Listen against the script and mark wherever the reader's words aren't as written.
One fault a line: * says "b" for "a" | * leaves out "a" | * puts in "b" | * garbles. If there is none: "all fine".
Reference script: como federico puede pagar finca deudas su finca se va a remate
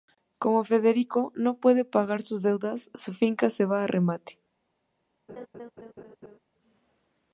* puts in "no"
* says "sus" for "finca"